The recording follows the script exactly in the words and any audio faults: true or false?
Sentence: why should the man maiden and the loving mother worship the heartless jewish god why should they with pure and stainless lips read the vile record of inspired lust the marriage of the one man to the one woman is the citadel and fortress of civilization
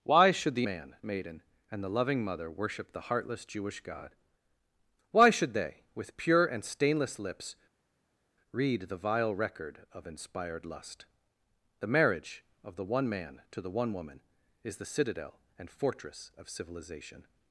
true